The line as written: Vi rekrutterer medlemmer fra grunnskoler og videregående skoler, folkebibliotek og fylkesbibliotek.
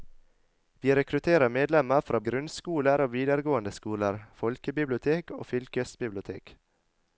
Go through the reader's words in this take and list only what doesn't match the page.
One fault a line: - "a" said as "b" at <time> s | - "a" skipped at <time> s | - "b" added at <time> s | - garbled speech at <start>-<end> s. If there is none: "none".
none